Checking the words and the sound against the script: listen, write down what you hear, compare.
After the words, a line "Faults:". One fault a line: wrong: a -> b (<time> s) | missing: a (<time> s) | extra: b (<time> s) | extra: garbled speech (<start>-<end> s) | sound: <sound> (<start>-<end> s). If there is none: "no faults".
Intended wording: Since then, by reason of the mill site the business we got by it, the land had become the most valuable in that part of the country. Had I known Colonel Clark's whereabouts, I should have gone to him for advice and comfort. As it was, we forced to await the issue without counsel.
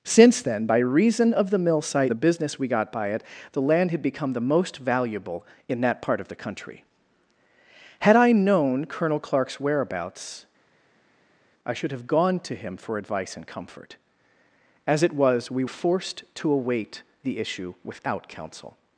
Since then, by reason of the mill site the business we got by it, the land had become the most valuable in that part of the country. Had I known Colonel Clark's whereabouts, I should have gone to him for advice and comfort. As it was, we forced to await the issue without counsel.
Faults:
no faults